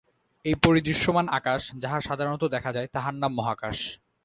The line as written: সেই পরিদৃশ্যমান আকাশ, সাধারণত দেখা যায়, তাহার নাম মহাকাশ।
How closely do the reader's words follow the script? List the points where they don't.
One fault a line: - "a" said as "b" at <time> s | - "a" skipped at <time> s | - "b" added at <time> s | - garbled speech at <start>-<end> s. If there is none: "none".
- "সেই" said as "এই" at 0.5 s
- "যাহা" added at 1.8 s